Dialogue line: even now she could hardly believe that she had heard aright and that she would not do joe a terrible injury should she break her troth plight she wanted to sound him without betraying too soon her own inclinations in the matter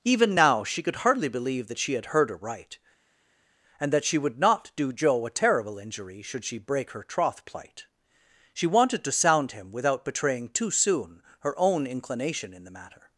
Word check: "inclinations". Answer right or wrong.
wrong